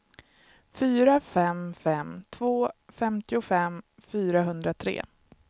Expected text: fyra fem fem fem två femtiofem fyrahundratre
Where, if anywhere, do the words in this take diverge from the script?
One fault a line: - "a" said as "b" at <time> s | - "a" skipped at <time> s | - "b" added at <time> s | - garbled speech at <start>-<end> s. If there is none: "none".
- "fem" skipped at 2.2 s